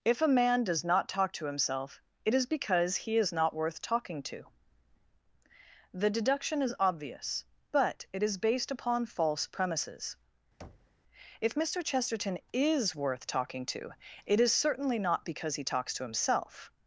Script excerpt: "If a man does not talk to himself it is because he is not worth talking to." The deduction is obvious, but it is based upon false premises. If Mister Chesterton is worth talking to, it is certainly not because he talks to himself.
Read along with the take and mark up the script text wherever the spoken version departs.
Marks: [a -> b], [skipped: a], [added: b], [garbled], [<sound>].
"If a man does not talk to himself it is because he is not worth talking to." The deduction is obvious, but it is based upon false premises. [thud] If Mister Chesterton is worth talking to, it is certainly not because he talks to himself.